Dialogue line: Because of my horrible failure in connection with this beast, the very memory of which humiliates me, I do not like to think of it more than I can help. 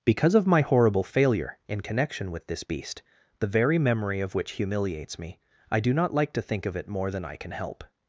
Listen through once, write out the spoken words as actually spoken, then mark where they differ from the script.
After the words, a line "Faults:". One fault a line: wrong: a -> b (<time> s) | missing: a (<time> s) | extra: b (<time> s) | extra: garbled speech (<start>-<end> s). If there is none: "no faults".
Because of my horrible failure in connection with this beast, the very memory of which humiliates me, I do not like to think of it more than I can help.
Faults:
no faults